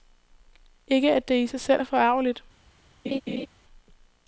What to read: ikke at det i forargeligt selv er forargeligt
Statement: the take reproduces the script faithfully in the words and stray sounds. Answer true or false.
false